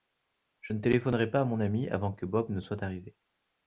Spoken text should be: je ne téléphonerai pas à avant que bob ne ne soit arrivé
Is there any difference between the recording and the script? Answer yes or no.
yes